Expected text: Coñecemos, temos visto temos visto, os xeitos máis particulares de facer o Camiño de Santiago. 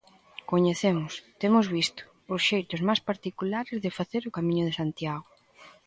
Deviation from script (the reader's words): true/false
true